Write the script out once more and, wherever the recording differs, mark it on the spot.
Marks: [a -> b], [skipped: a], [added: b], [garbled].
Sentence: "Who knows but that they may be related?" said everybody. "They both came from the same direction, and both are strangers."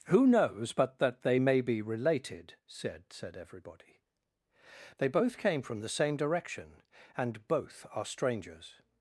"Who knows but that they may be related?" said [added: said] everybody. "They both came from the same direction, and both are strangers."